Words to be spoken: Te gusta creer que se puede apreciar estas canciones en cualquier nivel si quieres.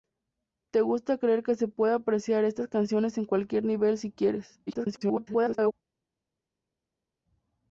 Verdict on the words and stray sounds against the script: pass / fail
fail